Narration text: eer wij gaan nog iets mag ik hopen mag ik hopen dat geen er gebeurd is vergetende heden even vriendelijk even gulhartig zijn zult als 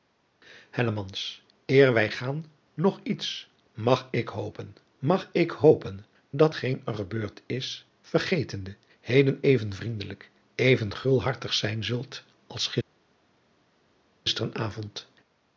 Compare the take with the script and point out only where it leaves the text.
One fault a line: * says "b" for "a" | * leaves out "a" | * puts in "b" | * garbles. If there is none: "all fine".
all fine